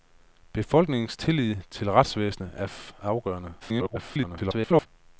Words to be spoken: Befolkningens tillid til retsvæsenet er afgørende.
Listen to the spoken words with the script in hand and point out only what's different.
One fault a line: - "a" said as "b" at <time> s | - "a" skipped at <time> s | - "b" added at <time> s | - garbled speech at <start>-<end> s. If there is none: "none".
- garbled speech at 3.6-4.9 s